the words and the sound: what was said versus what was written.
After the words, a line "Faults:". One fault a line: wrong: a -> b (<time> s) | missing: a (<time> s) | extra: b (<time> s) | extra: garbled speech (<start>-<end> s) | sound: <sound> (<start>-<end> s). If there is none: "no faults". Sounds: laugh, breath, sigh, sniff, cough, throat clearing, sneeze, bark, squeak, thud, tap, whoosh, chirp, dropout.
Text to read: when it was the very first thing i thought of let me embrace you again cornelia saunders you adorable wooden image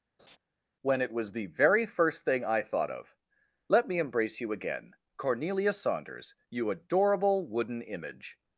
when it was the very first thing i thought of let me embrace you again cornelia saunders you adorable wooden image
Faults:
sound: laugh (0.2-0.4 s)